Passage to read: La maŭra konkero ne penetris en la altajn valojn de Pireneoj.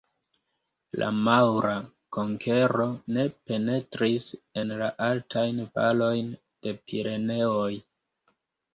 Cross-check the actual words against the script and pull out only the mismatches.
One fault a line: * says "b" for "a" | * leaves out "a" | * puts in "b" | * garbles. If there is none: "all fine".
all fine